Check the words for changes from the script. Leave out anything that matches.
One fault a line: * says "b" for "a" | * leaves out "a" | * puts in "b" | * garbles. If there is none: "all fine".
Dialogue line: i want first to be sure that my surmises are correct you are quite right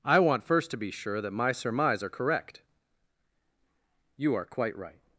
* says "surmise" for "surmises"